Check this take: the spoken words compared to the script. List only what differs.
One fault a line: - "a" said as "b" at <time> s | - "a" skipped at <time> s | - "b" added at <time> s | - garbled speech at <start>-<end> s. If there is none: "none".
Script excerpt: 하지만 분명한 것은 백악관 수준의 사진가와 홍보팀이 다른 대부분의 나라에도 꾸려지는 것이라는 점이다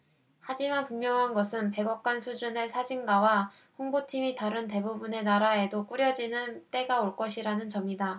- "때가 올" added at 6.7 s